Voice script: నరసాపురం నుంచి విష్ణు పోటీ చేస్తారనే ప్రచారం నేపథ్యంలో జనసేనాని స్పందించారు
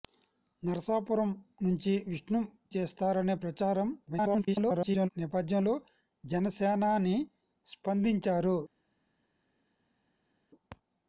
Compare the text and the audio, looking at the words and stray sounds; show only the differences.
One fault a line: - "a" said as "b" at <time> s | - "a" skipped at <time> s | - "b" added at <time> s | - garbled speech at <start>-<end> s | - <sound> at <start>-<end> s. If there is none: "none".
- "పోటీ" skipped at 2.4 s
- garbled speech at 4.1-5.1 s